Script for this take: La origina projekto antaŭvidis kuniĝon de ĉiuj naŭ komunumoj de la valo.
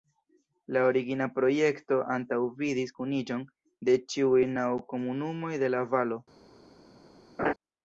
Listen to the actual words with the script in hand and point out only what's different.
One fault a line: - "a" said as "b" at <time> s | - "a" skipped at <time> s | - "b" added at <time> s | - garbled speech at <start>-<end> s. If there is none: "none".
none